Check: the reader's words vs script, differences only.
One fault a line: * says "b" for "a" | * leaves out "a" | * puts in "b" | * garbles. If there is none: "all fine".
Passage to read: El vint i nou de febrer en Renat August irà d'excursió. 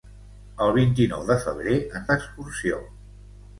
* leaves out "Renat August irà"